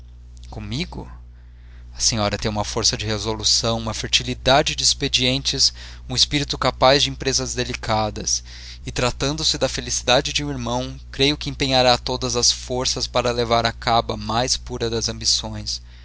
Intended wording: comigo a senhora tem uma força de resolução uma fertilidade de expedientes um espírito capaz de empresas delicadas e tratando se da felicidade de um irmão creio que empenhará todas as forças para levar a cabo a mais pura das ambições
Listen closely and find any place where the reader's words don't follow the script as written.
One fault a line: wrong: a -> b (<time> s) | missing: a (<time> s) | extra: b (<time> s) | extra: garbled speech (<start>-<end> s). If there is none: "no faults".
no faults